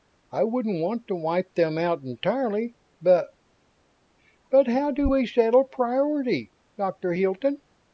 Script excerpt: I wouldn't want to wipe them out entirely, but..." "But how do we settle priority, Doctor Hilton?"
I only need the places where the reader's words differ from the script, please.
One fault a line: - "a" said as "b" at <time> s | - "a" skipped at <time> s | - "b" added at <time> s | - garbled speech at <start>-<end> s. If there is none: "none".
none